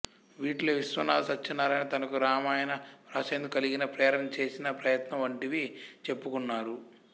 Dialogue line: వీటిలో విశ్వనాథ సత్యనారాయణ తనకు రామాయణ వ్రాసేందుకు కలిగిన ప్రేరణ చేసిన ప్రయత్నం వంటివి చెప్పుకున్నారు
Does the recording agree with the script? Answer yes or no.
yes